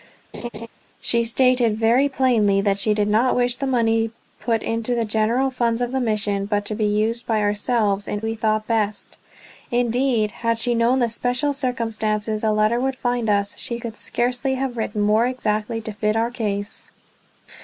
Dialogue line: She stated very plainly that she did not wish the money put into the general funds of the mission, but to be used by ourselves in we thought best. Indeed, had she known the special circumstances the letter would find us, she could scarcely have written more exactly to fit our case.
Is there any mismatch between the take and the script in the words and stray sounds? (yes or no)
yes